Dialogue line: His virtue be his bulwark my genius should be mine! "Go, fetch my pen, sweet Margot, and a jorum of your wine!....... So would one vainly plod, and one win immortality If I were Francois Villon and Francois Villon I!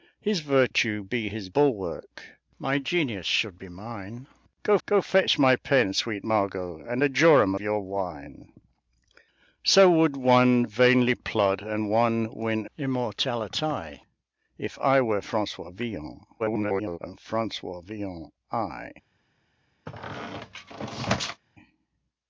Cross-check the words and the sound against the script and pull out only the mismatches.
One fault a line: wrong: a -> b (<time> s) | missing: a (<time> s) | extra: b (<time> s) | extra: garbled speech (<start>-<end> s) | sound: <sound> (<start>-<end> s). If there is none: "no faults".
extra: go (4.8 s)
missing: of (7.5 s)
extra: garbled speech (16.4-17.0 s)
sound: squeak (19.9-21.4 s)